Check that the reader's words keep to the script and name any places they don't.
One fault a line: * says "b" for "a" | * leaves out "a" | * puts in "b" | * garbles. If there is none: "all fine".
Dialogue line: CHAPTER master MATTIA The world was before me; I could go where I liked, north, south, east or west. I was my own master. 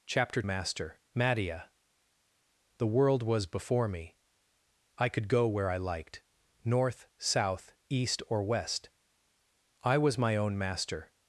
all fine